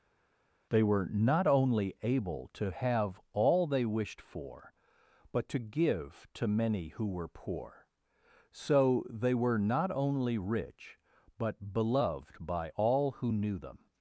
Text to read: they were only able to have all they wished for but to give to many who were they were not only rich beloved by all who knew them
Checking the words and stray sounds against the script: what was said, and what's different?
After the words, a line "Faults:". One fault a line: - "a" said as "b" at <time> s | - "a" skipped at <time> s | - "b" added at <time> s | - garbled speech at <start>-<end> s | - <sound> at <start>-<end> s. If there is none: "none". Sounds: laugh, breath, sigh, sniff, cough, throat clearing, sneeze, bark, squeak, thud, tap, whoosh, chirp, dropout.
they were not only able to have all they wished for but to give to many who were poor so they were not only rich but beloved by all who knew them
Faults:
- "not" added at 1.1 s
- "poor so" added at 7.3 s
- "but" added at 11.4 s